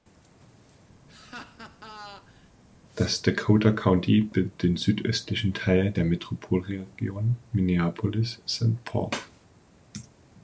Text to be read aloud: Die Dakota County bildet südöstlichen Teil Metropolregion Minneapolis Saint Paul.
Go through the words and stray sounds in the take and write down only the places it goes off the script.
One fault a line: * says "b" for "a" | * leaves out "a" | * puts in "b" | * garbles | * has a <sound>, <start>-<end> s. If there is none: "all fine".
* has a laugh, 1.1-2.5 s
* says "Das" for "Die"
* puts in "den"
* puts in "der"